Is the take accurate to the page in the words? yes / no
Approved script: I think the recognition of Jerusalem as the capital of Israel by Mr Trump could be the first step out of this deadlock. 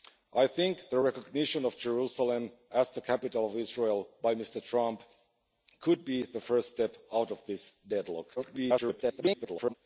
no